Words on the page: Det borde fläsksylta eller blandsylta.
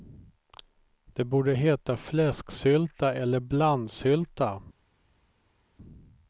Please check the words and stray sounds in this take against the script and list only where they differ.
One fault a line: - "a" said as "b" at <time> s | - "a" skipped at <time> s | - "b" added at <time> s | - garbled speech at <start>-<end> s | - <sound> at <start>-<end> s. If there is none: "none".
- "heta" added at 1.5 s